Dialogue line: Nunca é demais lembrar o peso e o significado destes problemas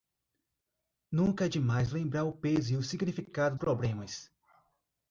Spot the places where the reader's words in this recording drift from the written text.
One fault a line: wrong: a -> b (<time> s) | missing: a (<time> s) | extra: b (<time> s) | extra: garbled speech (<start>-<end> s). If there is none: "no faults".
missing: destes (3.5 s)